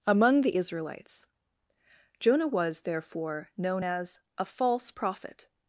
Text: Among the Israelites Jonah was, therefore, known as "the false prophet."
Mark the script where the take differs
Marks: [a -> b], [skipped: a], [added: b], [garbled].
Among the Israelites Jonah was, therefore, known as ["the -> a] false prophet."